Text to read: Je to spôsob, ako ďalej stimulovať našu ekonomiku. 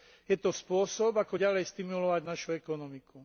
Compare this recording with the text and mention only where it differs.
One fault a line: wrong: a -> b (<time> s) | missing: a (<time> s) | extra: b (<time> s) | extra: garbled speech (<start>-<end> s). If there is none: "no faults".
no faults